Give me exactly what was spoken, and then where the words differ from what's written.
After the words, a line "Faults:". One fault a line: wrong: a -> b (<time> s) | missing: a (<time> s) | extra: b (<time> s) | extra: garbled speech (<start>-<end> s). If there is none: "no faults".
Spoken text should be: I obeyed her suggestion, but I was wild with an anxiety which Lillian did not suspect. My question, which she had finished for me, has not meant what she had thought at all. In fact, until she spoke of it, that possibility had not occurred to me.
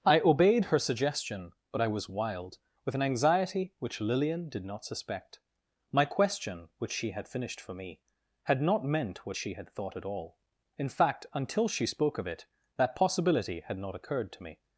I obeyed her suggestion, but I was wild with an anxiety which Lillian did not suspect. My question, which she had finished for me, had not meant what she had thought at all. In fact, until she spoke of it, that possibility had not occurred to me.
Faults:
wrong: has -> had (8.4 s)